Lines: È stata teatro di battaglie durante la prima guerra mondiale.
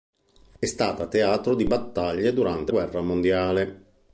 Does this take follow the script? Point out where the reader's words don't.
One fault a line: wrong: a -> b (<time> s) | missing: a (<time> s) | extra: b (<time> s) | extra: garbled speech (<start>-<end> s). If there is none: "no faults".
missing: la prima (2.7 s)